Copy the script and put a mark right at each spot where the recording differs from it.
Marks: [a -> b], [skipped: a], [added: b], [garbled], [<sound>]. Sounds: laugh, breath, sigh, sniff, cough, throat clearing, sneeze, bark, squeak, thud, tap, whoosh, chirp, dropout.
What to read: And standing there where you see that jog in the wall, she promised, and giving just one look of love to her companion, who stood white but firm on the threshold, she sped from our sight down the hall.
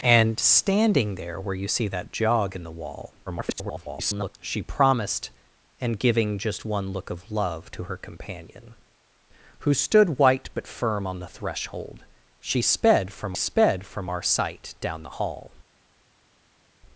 And standing there where you see that jog in the wall, [garbled] she promised, and giving just one look of love to her companion, who stood white but firm on the threshold, she sped from [added: sped from] our sight down the hall.